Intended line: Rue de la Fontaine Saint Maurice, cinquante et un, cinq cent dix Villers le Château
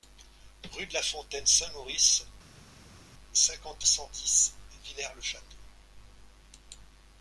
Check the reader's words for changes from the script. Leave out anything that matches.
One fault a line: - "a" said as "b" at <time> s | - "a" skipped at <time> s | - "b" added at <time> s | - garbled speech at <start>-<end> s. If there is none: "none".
- "et un cinq" skipped at 3.9 s